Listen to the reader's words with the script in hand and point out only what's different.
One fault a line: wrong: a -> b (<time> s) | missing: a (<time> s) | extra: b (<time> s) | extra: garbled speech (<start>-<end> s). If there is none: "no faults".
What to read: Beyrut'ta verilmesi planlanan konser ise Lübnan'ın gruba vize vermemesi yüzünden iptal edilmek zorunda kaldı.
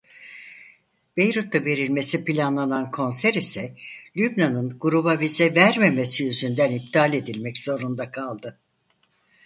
no faults